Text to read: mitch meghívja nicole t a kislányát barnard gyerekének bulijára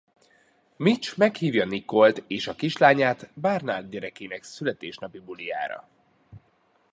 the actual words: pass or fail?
fail